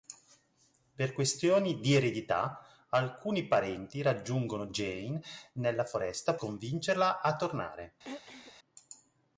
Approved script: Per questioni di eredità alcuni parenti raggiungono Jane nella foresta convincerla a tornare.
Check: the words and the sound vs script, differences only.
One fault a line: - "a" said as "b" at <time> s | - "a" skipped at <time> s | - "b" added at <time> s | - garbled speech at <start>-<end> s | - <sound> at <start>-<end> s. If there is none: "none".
- throat clearing at 8.0-8.5 s